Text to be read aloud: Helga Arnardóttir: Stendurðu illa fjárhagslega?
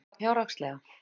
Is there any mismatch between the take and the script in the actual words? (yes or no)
yes